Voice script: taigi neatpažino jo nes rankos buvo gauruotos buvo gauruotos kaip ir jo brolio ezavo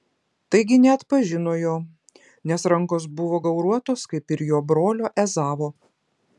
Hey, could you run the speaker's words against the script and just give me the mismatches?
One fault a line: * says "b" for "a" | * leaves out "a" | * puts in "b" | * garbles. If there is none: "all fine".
* leaves out "buvo gauruotos"